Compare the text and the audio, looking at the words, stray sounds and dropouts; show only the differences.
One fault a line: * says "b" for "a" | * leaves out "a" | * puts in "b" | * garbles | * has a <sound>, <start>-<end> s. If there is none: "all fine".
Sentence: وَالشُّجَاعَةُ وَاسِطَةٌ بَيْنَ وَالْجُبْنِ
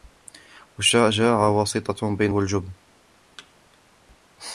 * has a thud, 3.4-3.5 s